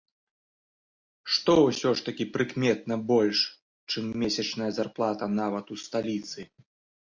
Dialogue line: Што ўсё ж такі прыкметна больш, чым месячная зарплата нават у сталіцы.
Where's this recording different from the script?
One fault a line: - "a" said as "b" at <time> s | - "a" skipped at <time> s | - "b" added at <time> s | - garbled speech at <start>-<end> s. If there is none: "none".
none